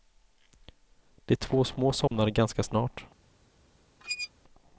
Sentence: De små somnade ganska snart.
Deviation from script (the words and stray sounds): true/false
true